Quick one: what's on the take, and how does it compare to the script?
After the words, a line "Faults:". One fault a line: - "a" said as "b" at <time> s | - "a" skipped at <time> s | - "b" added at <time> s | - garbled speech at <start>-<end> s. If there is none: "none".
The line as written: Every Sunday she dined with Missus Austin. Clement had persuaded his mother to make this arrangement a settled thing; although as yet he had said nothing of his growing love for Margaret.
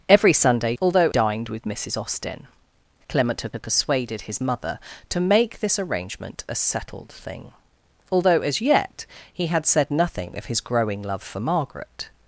Every Sunday although dined with Missus Austin. Clement had had persuaded his mother to make this arrangement a settled thing; although as yet he had said nothing of his growing love for Margaret.
Faults:
- "she" said as "although" at 0.8 s
- "had" added at 3.5 s